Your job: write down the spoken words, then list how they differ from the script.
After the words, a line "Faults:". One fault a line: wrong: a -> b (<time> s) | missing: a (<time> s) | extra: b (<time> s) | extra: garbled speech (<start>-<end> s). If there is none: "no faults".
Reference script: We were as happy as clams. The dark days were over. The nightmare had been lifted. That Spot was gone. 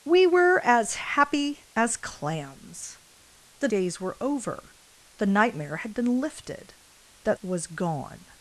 We were as happy as clams. The days were over. The nightmare had been lifted. That Was gone.
Faults:
missing: dark (3.7 s)
missing: Spot (7.4 s)